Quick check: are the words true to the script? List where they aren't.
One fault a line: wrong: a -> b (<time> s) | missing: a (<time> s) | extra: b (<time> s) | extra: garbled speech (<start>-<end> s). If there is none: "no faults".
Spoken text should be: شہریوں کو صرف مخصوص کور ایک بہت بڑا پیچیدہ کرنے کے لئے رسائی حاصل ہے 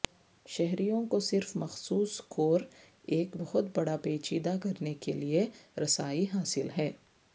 no faults